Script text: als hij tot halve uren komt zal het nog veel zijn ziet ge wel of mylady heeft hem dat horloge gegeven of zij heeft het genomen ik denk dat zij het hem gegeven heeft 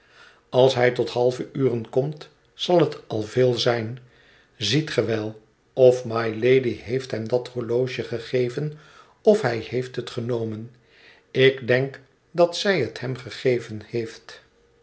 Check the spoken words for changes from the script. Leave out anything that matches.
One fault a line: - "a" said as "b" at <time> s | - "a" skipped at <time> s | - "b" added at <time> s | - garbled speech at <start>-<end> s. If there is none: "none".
- "nog" said as "al" at 3.1 s
- "zij" said as "hij" at 9.4 s